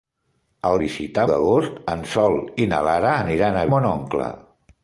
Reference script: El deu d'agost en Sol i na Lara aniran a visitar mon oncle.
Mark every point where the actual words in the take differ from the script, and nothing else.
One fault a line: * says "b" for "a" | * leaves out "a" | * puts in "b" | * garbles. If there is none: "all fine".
* says "visitar" for "deu"
* leaves out "visitar"